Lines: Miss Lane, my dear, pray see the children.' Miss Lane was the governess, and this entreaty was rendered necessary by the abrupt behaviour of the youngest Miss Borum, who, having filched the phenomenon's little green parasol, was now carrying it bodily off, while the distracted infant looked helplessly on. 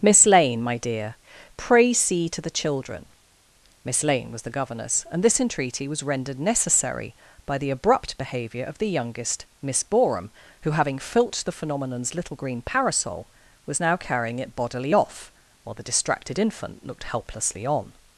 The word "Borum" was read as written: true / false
true